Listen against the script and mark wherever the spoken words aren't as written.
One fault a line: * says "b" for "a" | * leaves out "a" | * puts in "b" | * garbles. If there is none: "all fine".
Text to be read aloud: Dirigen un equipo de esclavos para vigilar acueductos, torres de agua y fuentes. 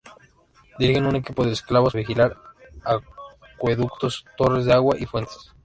* leaves out "para"